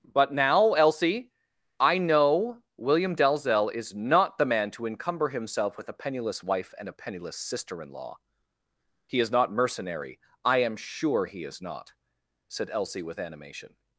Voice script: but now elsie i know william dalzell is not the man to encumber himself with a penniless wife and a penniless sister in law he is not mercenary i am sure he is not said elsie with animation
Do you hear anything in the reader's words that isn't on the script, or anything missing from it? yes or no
no